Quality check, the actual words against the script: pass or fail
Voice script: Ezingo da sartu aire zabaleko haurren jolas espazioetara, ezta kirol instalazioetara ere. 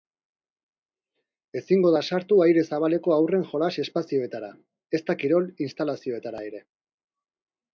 pass